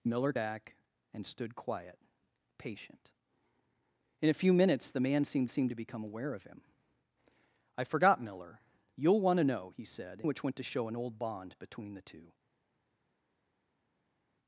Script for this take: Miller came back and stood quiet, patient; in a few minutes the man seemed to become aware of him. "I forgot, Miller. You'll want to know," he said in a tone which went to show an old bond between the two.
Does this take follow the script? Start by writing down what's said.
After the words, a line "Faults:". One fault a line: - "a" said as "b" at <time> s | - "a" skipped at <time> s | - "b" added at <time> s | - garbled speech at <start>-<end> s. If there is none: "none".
Miller back and stood quiet, patient; in a few minutes the man seemed seemed to become aware of him. "I forgot, Miller. You'll want to know," he said which went to show an old bond between the two.
Faults:
- "came" skipped at 0.3 s
- "seemed" added at 5.4 s
- "in a tone" skipped at 10.2 s